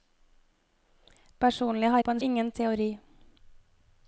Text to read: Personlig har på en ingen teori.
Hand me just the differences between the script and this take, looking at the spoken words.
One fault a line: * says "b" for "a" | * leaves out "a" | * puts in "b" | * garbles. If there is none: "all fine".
all fine